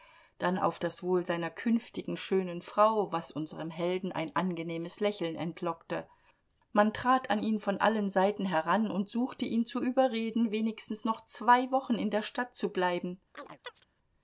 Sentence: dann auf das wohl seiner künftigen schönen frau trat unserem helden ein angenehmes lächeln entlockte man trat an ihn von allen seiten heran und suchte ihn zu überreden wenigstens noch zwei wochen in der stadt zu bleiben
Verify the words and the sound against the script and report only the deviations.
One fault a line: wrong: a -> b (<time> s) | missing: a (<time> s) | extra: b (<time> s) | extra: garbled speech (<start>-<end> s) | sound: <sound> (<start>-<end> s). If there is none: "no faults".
wrong: trat -> was (3.1 s)
sound: chirp (13.3-13.9 s)